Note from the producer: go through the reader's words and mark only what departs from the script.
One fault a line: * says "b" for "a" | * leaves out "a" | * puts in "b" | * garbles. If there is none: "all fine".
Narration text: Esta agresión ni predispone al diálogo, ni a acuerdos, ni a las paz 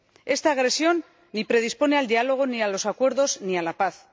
* puts in "los"
* says "la" for "las"